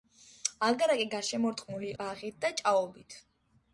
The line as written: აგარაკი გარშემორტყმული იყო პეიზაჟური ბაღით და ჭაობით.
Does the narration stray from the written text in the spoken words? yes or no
yes